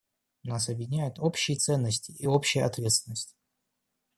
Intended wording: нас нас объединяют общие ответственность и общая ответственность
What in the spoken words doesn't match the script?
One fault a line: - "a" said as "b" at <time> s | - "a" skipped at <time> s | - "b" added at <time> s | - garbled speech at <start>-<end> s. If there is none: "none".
- "нас" skipped at 0.7 s
- "ответственность" said as "ценности" at 1.6 s